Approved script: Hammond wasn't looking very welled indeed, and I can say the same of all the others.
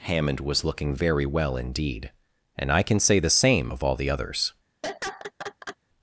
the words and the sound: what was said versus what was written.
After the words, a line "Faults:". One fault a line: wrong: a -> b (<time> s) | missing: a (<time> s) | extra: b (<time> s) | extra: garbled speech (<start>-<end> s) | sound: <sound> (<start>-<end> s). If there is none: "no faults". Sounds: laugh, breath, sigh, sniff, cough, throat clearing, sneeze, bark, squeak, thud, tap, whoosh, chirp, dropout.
Hammond was looking very well indeed, and I can say the same of all the others.
Faults:
wrong: wasn't -> was (0.4 s)
wrong: welled -> well (1.3 s)
sound: laugh (4.8-5.8 s)